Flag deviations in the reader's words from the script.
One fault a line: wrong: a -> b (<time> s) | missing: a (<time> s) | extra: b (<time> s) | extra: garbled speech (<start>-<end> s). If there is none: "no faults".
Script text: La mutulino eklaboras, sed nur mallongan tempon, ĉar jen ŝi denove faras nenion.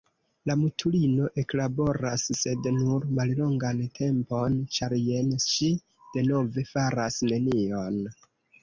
no faults